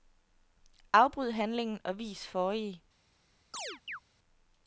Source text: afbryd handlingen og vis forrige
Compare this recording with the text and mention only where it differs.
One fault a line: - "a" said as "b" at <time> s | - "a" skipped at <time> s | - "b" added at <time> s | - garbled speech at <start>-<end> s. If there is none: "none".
none